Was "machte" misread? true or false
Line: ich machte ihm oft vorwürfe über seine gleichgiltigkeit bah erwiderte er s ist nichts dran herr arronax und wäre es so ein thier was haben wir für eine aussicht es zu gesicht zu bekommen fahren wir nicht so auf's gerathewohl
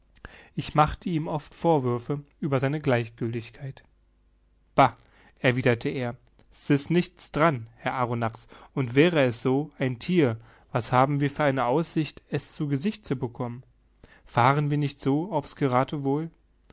false